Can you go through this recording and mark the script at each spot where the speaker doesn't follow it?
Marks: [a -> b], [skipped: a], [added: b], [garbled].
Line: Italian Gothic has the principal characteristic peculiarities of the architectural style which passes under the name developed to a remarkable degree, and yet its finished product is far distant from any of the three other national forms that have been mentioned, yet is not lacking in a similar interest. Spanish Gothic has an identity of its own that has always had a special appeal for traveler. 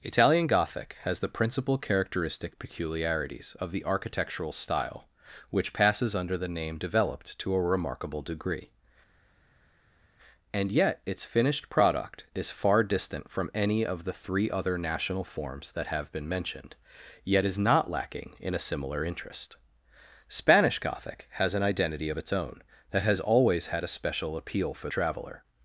Italian Gothic has the principal characteristic peculiarities of the architectural style which passes under the name developed to a remarkable degree, and yet its finished product is far distant from any of the three other national forms that have been mentioned, yet is not lacking in a similar interest. Spanish Gothic has an identity of its own that has always had a special appeal for traveler.